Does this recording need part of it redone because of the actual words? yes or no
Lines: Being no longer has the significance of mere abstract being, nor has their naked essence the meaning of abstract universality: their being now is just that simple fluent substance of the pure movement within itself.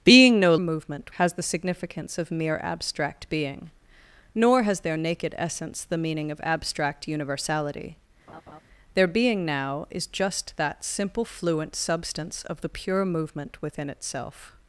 yes